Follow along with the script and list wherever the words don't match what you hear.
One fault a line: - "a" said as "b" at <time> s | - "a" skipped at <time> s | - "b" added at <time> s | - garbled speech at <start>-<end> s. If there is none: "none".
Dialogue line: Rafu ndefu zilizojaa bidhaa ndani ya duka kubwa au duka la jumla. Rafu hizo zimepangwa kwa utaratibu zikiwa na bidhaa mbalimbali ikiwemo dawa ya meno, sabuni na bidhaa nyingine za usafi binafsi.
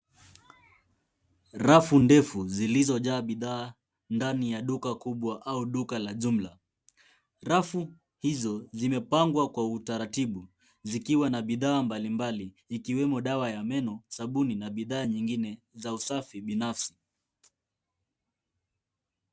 none